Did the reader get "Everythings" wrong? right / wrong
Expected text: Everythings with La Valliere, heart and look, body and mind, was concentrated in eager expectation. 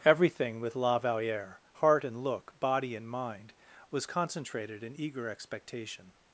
wrong